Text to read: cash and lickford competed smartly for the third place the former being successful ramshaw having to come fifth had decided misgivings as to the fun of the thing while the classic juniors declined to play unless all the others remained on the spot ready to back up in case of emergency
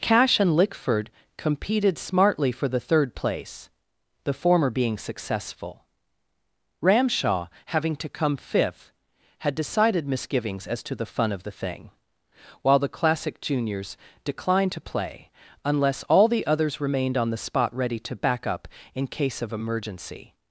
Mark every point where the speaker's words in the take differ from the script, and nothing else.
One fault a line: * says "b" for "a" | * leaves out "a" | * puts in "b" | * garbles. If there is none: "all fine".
all fine